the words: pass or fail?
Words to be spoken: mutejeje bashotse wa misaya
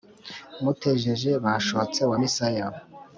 pass